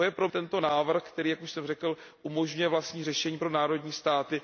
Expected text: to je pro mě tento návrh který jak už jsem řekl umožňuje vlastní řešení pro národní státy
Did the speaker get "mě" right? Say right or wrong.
wrong